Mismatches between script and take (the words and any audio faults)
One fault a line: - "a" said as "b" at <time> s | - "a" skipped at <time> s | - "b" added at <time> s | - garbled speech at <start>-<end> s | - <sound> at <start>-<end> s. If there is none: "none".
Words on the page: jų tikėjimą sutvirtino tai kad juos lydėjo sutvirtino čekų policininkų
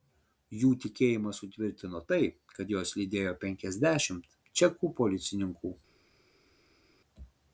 - "sutvirtino" said as "penkiasdešimt" at 3.4 s